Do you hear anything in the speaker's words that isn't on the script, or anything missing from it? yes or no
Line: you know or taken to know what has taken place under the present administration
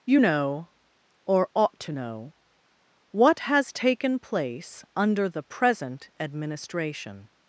yes